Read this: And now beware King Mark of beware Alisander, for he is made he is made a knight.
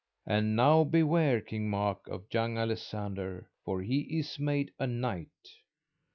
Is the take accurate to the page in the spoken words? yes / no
no